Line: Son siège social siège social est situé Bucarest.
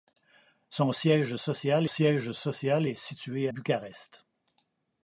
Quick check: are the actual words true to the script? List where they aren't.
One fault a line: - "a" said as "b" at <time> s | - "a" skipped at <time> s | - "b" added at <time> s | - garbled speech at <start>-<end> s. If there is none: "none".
none